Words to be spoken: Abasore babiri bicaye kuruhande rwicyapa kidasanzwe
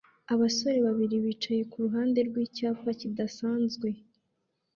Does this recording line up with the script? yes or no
yes